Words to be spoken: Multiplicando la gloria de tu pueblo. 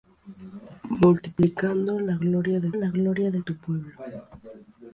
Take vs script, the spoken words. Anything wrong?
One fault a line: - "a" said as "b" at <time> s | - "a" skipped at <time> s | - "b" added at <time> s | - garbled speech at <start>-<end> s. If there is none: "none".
- "la gloria de" added at 2.7 s